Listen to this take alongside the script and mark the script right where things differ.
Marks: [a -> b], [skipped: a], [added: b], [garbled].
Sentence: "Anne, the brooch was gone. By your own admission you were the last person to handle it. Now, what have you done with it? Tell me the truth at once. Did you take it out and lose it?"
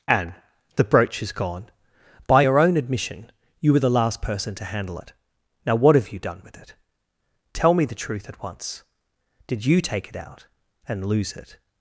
"Anne, the brooch [was -> is] gone. By your own admission you were the last person to handle it. Now, what have you done with it? Tell me the truth at once. Did you take it out and lose it?"